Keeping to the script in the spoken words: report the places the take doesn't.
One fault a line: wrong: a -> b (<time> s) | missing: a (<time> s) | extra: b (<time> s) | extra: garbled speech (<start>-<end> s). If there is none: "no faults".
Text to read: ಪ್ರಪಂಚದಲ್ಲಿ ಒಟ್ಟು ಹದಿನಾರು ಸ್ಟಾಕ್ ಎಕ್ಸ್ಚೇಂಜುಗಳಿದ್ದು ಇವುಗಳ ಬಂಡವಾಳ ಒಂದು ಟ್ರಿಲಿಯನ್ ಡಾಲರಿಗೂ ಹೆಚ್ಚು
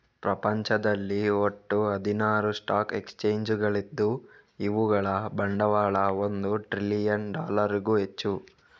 no faults